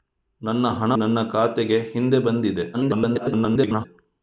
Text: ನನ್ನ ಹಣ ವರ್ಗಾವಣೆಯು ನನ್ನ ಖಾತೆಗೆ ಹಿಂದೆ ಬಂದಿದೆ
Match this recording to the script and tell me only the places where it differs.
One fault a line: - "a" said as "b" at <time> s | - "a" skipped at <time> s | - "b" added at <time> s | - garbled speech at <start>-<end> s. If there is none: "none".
- "ವರ್ಗಾವಣೆಯು" skipped at 0.9 s
- garbled speech at 2.7-3.9 s